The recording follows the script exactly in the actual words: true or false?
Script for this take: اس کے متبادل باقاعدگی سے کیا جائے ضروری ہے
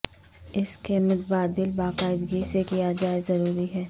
true